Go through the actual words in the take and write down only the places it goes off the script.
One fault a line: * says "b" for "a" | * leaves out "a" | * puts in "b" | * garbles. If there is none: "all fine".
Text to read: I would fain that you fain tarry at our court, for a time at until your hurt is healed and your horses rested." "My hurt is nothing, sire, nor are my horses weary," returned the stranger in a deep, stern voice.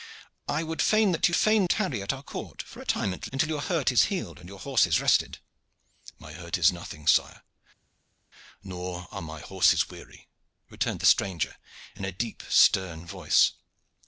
all fine